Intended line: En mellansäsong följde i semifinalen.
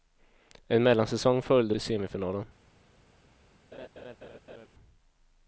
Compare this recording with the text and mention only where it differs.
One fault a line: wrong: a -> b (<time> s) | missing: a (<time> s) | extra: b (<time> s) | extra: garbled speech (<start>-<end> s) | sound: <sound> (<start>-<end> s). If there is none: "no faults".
sound: laugh (3.7-4.7 s)